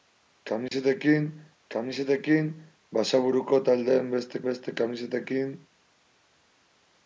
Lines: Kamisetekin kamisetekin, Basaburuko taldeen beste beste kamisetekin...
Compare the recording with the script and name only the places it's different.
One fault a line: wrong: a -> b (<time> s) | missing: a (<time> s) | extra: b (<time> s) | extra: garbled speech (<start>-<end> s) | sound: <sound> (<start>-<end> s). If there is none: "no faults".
sound: dropout (0.7-0.7 s)